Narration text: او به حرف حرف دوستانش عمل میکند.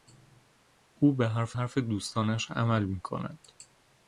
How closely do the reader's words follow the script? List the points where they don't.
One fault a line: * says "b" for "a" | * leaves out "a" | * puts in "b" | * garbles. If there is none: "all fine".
all fine